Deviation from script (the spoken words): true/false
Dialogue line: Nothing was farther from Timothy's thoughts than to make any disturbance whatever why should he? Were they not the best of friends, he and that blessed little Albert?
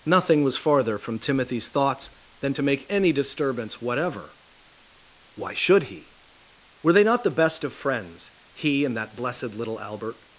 false